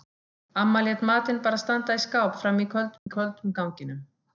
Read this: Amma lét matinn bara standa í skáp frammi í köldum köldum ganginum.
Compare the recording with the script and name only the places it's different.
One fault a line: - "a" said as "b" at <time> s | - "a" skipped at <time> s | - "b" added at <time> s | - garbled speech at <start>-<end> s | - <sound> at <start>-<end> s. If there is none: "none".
- dropout at 3.0-3.1 s